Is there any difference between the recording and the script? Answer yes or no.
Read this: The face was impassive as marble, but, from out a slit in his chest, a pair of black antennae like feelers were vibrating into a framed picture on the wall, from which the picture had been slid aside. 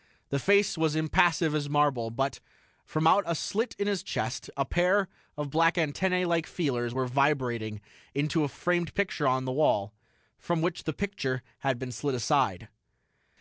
no